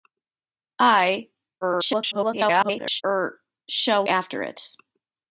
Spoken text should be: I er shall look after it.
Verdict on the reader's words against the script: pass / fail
fail